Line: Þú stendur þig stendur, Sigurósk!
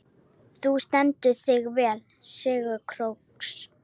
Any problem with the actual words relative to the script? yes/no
yes